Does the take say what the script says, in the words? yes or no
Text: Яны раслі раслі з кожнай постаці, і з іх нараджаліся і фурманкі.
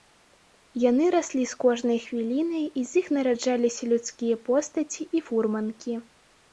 no